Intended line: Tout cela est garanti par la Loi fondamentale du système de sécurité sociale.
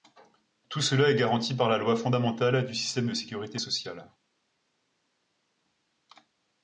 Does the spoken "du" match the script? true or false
true